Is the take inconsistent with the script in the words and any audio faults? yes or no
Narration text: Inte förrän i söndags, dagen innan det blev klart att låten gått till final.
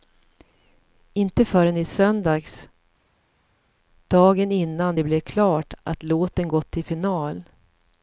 no